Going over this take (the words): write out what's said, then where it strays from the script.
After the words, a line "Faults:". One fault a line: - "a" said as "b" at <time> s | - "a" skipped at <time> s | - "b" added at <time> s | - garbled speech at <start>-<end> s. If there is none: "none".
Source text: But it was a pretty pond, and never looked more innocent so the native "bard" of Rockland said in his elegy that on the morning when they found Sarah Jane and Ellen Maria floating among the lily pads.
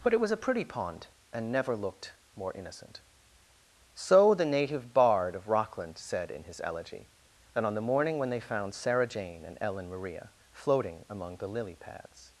But it was a pretty pond, and never looked more innocent so the native "bard" of Rockland said in his elegy that on the morning when they found Sarah Jane and Ellen Maria floating among the lily pads.
Faults:
none